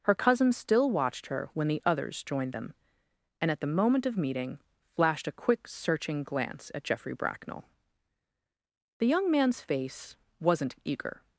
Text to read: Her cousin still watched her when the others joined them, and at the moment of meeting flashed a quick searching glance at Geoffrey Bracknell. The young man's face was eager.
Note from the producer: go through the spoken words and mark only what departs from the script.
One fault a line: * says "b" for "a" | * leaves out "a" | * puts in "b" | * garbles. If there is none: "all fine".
* says "wasn't" for "was"